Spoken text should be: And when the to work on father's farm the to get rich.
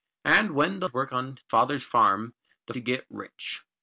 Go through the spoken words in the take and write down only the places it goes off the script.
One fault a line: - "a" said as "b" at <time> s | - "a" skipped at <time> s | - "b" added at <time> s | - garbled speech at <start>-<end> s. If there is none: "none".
none